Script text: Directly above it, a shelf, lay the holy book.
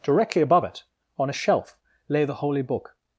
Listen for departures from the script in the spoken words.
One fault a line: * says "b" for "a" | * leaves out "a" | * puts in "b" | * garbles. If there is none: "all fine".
* puts in "on"